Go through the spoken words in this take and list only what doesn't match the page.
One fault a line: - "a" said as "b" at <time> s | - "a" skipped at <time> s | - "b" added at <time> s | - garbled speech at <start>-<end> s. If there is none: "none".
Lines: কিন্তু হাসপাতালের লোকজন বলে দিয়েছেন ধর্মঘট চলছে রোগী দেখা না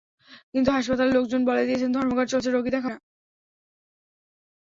none